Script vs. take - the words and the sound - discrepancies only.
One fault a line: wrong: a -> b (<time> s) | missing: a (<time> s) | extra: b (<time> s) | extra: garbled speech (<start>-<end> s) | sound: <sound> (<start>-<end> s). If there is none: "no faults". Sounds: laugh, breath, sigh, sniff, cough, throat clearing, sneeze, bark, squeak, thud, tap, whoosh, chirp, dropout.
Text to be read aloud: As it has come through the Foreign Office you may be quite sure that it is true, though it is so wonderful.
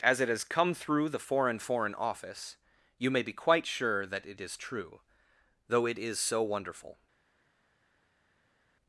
extra: Foreign (1.6 s)